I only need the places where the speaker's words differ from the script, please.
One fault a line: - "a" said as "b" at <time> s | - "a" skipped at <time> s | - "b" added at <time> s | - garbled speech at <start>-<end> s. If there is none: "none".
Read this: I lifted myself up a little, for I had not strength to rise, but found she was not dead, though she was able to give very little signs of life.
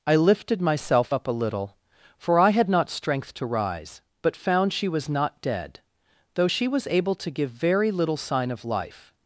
- "signs" said as "sign" at 8.2 s